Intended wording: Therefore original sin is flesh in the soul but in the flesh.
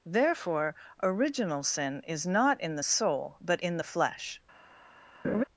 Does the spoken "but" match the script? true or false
true